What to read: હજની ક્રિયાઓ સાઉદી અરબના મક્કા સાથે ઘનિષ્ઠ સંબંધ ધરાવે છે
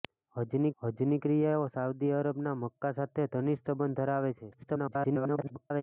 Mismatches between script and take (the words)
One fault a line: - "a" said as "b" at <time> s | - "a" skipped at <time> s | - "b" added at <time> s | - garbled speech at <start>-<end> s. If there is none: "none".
- "હજની" added at 0.8 s
- garbled speech at 4.5-5.8 s